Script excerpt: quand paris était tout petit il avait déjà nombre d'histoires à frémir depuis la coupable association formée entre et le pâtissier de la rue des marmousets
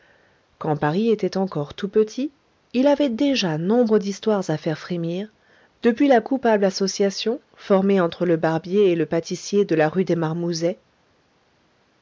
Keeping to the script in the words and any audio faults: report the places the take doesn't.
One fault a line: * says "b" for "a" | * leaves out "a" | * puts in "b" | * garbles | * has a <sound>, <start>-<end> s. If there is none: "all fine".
* puts in "encore"
* puts in "faire"
* puts in "le barbier"